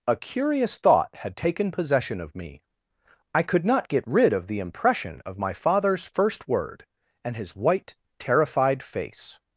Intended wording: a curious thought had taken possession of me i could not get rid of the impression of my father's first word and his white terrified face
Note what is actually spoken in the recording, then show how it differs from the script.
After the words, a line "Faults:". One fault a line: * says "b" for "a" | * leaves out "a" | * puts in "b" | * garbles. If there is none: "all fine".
a curious thought had taken possession of me i could not get rid of the impression of my father's first word and his white terrified face
Faults:
all fine